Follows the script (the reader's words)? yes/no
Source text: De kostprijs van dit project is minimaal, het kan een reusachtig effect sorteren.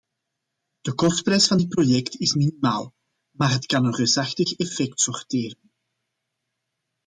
no